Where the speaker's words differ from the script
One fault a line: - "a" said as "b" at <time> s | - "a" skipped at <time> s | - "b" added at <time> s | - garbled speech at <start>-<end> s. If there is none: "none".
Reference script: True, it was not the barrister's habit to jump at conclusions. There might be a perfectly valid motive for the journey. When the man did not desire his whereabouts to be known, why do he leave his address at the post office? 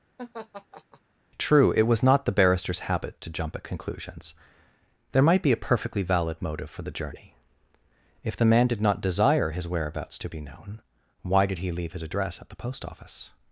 - "When" said as "If" at 8.2 s
- "do" said as "did" at 11.5 s